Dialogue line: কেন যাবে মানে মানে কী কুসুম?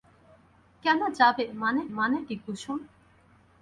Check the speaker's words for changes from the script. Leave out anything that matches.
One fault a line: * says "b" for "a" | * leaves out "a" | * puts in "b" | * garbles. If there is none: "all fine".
all fine